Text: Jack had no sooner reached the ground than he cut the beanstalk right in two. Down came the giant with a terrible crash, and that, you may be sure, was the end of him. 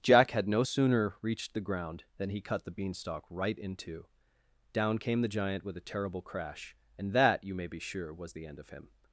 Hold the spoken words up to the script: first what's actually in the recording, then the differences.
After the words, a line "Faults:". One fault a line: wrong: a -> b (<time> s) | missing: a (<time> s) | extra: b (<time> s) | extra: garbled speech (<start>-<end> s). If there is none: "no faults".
Jack had no sooner reached the ground than he cut the beanstalk right in two. Down came the giant with a terrible crash, and that, you may be sure, was the end of him.
Faults:
no faults